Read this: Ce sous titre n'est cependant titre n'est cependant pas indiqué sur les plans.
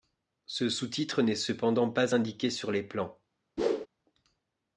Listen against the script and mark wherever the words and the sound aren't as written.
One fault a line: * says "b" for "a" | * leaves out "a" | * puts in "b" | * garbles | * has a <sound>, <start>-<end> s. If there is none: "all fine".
* leaves out "titre n'est cependant"
* has a whoosh, 3.6-3.9 s